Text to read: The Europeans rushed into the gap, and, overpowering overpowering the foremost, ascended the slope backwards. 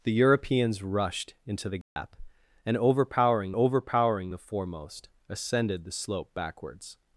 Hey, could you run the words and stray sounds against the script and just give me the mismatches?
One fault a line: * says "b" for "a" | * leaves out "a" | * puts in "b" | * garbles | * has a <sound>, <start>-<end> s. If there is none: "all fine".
* has a dropout, 1.8-2.0 s